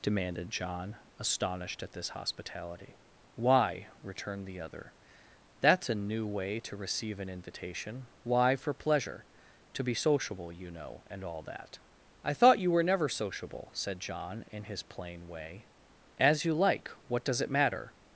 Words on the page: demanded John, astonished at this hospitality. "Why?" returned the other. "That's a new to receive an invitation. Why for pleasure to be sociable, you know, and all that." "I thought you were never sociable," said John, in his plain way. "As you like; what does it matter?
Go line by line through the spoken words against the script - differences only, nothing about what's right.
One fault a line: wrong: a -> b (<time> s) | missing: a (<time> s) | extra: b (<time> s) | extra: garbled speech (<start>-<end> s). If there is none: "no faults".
extra: way (6.2 s)